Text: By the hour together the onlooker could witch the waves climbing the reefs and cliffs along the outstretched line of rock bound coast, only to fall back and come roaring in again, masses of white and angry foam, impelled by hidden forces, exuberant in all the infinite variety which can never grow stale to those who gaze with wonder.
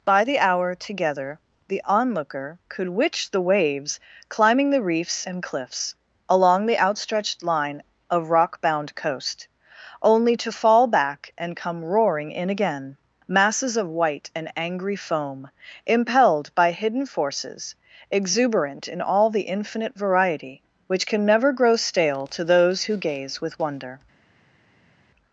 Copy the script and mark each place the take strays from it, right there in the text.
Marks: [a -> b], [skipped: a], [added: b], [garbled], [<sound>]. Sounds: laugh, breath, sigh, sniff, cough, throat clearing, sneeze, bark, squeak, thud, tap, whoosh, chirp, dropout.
By the hour together the onlooker could witch the waves climbing the reefs and cliffs along the outstretched line of rock bound coast, only to fall back and come roaring in again, masses of white and angry foam, impelled by hidden forces, exuberant in all the infinite variety which can never grow stale to those who gaze with wonder.